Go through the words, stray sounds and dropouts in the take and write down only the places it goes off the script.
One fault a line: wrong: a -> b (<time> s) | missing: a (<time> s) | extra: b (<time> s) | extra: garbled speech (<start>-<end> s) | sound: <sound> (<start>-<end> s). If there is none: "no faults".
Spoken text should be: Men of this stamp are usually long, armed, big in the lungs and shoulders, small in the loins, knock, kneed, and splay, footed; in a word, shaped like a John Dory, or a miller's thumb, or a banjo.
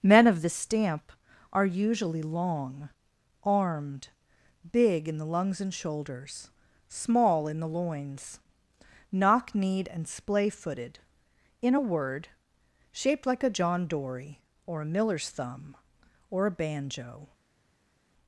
no faults